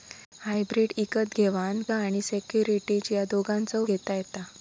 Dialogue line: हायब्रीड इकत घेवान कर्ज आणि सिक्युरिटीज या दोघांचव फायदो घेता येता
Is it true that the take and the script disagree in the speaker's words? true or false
true